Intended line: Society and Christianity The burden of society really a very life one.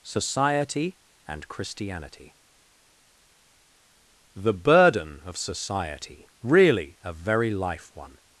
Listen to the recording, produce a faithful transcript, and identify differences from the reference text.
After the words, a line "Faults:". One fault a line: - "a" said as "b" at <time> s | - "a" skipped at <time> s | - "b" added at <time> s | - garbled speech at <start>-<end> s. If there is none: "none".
Society and Christianity The burden of society really a very life one.
Faults:
none